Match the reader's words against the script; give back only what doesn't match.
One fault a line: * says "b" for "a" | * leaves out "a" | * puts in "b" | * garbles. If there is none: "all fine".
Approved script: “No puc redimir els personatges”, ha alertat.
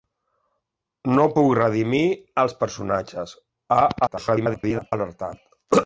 * garbles